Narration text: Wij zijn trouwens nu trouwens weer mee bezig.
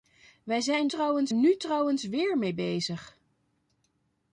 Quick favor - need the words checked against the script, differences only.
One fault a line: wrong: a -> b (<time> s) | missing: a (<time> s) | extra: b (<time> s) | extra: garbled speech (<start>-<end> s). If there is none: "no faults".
no faults